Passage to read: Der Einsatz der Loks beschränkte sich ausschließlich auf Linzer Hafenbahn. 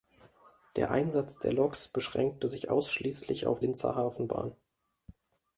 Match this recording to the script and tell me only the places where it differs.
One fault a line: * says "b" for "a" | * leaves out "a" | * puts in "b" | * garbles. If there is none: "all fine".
all fine